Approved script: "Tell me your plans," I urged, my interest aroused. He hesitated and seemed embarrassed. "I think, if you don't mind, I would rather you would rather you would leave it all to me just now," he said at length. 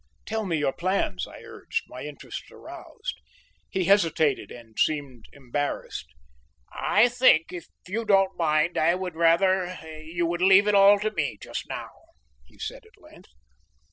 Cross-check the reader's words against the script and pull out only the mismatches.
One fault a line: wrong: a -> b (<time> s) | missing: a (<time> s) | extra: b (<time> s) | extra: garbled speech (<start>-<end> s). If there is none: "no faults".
missing: rather you would (10.4 s)